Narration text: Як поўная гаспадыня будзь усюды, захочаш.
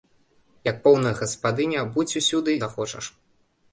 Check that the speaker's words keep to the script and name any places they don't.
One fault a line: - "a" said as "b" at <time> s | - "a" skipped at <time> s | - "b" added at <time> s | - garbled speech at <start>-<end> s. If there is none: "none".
none